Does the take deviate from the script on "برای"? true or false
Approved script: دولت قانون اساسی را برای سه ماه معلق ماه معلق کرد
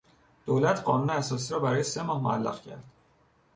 false